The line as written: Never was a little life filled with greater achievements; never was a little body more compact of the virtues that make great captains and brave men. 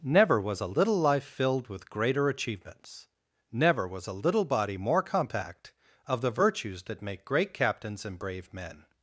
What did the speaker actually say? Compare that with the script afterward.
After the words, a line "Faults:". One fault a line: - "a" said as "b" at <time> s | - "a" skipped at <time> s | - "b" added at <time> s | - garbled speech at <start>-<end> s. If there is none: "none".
Never was a little life filled with greater achievements; never was a little body more compact of the virtues that make great captains and brave men.
Faults:
none